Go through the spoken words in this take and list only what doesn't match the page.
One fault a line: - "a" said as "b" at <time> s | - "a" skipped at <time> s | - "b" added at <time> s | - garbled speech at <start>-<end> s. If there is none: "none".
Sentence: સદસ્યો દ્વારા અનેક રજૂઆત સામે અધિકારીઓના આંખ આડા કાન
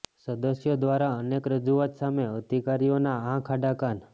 none